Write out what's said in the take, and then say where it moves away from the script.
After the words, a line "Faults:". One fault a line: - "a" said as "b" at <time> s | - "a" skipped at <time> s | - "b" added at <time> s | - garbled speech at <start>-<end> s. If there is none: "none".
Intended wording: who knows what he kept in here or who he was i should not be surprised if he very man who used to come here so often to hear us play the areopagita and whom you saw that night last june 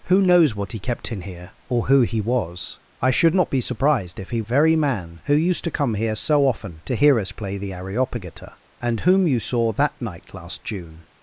who knows what he kept in here or who he was i should not be surprised if he very man who used to come here so often to hear us play the areopagita and whom you saw that night last june
Faults:
none